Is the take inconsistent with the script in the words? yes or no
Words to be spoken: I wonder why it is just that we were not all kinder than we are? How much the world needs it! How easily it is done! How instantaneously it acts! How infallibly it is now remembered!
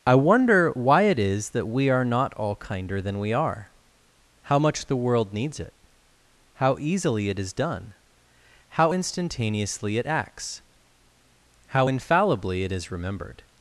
yes